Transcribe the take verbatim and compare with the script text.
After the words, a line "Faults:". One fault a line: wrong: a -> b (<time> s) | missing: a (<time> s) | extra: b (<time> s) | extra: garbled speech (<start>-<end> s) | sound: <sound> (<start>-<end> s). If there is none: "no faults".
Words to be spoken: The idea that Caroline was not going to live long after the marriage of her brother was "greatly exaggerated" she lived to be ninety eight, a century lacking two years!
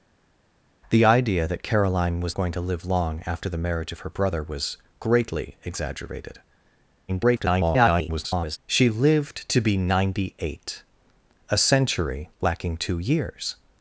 The idea that Caroline was going to live long after the marriage of her brother was "greatly exaggerated" [garbled] she lived to be ninety eight, a century lacking two years!
Faults:
missing: not (2.4 s)
extra: garbled speech (7.1-8.6 s)